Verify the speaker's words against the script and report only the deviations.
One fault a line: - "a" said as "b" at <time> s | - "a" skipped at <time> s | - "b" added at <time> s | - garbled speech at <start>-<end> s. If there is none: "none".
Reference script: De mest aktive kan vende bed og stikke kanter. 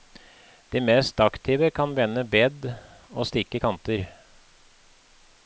none